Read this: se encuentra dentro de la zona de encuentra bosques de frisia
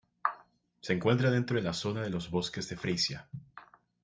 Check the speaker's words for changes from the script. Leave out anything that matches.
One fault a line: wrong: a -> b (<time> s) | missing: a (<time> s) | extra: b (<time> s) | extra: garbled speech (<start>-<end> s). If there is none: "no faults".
wrong: encuentra -> los (2.1 s)